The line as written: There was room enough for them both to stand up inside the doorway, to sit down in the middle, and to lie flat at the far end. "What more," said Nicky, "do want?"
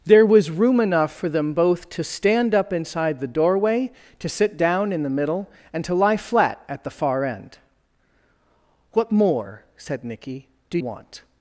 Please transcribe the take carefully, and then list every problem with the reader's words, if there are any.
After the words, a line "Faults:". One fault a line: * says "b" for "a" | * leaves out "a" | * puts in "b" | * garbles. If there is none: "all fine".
There was room enough for them both to stand up inside the doorway, to sit down in the middle, and to lie flat at the far end. "What more," said Nicky, "do want?"
Faults:
all fine